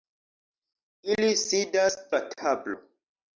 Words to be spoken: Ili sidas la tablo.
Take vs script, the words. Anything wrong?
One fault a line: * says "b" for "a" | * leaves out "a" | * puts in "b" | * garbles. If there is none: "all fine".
all fine